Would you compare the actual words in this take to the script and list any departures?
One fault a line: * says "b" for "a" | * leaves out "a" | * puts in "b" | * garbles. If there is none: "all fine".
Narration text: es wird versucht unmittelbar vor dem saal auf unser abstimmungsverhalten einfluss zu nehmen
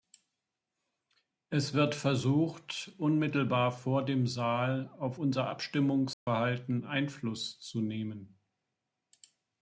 all fine